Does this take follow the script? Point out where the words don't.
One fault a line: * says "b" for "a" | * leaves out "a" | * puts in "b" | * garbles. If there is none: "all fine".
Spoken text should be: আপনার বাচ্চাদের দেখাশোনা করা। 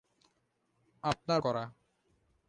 * leaves out "বাচ্চাদের দেখাশোনা"